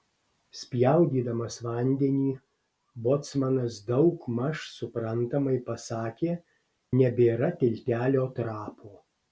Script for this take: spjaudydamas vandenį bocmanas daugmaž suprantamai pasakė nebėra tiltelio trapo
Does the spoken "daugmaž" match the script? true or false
true